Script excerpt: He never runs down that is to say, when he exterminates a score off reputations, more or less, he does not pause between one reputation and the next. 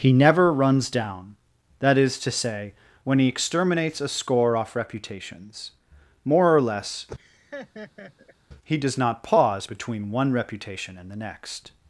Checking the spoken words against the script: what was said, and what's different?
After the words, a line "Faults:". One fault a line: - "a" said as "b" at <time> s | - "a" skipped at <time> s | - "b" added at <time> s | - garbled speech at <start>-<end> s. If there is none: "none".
He never runs down that is to say, when he exterminates a score off reputations, more or less, he does not pause between one reputation and the next.
Faults:
none